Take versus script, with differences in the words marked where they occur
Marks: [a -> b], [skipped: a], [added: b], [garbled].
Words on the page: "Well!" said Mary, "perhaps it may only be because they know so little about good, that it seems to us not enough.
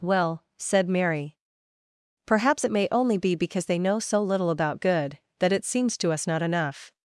"Well!" said Mary, "perhaps it may only be because they know so little about good, that it seems to us not enough.